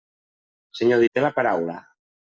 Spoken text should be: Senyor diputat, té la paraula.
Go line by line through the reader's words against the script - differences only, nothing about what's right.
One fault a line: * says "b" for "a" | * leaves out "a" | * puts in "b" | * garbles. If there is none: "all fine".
* leaves out "diputat"